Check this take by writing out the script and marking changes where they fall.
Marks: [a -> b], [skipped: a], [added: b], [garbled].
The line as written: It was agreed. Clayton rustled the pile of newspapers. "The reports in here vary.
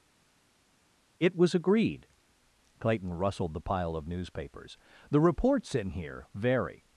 It was agreed. Clayton rustled the pile of newspapers. "The reports in here vary.